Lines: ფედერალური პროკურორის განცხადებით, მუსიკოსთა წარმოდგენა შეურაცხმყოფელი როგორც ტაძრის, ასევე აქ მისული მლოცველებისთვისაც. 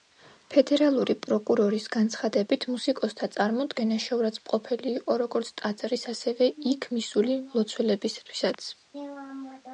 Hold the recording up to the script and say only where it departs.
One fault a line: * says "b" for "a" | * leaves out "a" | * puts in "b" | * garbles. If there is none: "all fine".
* puts in "იყო"
* says "იქ" for "აქ"